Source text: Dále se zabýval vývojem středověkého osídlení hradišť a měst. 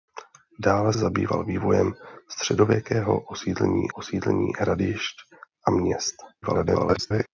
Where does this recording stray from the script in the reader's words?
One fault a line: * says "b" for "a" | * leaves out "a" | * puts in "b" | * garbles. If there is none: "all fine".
* leaves out "se"
* puts in "osídlení"
* garbles